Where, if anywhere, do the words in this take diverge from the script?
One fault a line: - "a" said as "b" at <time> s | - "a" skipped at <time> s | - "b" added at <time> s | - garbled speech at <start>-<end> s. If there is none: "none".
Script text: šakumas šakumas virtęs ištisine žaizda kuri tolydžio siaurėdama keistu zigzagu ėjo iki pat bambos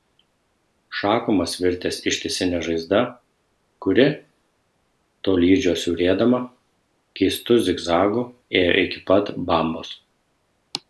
- "šakumas" skipped at 1.5 s